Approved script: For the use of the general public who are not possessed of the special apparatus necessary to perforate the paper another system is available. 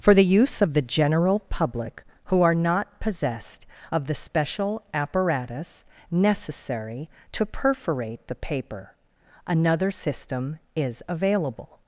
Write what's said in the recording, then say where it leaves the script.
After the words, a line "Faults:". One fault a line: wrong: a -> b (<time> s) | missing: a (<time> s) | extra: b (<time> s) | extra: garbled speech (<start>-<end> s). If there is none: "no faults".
For the use of the general public who are not possessed of the special apparatus necessary to perforate the paper another system is available.
Faults:
no faults